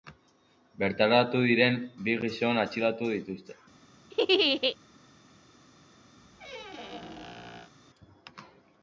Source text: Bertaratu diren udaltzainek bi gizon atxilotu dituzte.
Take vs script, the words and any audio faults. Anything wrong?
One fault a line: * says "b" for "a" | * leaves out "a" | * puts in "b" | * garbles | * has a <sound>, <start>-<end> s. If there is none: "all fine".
* leaves out "udaltzainek"
* has a laugh, 4.1-4.8 s
* has a squeak, 6.2-7.7 s